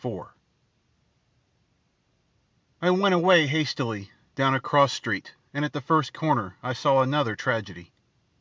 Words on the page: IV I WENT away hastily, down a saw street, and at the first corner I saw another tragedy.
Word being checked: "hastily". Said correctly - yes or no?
yes